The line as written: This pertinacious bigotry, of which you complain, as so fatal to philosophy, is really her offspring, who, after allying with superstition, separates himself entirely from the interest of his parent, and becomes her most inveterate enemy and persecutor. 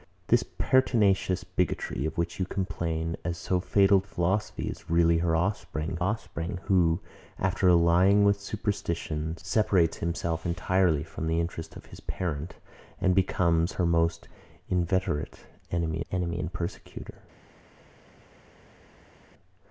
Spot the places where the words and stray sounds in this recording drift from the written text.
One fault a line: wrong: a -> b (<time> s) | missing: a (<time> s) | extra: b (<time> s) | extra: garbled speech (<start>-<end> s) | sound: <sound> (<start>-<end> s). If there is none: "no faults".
missing: to (4.0 s)
extra: offspring (6.0 s)
extra: enemy (16.1 s)